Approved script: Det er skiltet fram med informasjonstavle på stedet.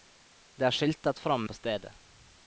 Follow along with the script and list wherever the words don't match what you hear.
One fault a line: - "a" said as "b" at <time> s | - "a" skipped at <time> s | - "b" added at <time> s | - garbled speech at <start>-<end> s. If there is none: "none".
- "med informasjonstavle" skipped at 1.5 s